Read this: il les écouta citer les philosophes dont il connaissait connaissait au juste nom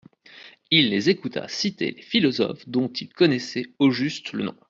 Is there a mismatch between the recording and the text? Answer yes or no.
yes